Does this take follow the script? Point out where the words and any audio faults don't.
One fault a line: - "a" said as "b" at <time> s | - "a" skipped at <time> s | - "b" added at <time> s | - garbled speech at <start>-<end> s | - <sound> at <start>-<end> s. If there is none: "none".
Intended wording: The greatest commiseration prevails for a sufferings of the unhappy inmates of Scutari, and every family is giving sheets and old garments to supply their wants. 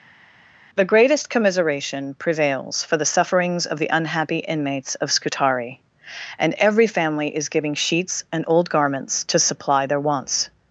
- "a" said as "the" at 3.0 s